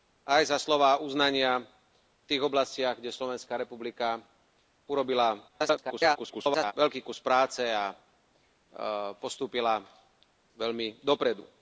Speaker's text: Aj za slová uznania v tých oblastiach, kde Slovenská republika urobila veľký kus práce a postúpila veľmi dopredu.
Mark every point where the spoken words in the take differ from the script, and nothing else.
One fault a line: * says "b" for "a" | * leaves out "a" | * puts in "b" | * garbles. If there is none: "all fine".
* garbles